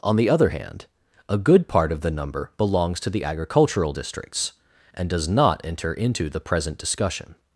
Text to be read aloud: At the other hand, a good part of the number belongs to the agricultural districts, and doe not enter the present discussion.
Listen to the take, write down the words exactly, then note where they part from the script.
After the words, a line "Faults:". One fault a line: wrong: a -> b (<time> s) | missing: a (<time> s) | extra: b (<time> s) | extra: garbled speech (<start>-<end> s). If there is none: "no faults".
On the other hand, a good part of the number belongs to the agricultural districts, and does not enter into the present discussion.
Faults:
wrong: At -> On (0.0 s)
wrong: doe -> does (5.1 s)
extra: into (5.9 s)